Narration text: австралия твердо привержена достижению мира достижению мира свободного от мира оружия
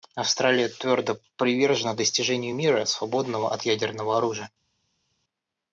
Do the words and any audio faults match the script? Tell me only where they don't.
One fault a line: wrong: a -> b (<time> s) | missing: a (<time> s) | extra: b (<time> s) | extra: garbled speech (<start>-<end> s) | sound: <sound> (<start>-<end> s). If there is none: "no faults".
missing: достижению мира (2.8 s)
wrong: мира -> ядерного (3.6 s)